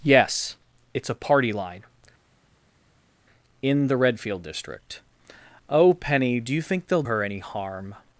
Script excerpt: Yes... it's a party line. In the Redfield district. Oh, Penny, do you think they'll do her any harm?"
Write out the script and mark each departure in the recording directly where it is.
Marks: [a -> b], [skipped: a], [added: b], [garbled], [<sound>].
Yes... it's a party line. In the Redfield district. Oh, Penny, do you think they'll [skipped: do] her any harm?"